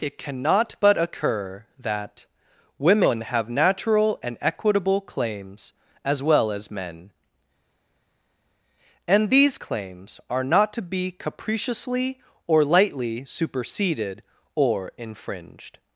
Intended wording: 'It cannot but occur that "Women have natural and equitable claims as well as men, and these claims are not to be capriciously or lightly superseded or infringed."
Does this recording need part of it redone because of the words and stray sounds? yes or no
no